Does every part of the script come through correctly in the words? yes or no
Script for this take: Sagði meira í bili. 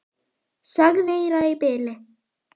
yes